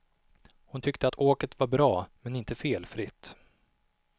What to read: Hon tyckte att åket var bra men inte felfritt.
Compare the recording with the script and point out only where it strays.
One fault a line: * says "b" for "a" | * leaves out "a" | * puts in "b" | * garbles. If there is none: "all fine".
all fine